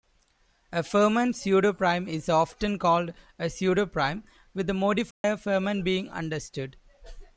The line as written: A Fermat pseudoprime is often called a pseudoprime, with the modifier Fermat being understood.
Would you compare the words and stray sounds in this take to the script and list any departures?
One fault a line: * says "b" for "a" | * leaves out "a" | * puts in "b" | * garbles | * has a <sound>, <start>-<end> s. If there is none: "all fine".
* has a dropout, 5.1-5.2 s